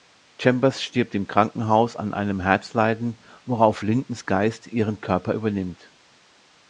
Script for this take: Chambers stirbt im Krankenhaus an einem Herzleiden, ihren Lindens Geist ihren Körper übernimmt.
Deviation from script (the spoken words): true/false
true